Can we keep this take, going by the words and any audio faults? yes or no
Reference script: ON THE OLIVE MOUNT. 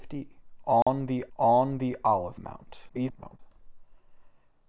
no